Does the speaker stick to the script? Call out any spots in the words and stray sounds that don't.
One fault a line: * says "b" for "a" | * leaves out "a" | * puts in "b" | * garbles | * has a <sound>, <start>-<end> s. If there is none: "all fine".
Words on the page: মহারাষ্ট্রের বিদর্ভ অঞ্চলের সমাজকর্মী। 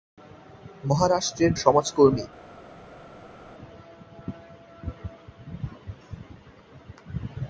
* leaves out "বিদর্ভ অঞ্চলের"